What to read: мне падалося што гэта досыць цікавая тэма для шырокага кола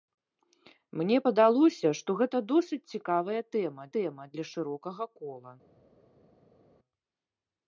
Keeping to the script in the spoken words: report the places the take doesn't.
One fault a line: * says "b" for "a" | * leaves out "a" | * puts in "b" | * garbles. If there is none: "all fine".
* puts in "тэма"